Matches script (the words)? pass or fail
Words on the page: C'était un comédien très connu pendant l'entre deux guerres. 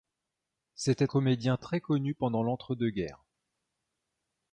fail